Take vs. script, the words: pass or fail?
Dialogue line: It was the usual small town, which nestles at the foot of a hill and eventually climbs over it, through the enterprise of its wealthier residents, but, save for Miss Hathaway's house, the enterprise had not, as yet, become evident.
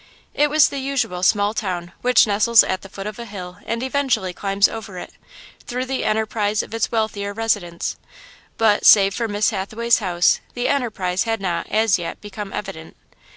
pass